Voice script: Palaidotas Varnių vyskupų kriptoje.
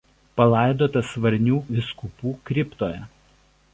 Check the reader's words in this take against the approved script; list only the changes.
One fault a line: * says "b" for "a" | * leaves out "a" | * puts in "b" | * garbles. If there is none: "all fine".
all fine